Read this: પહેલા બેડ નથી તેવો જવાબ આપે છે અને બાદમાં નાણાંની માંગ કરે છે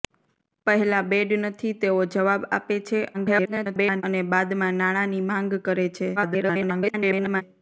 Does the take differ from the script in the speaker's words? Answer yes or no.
yes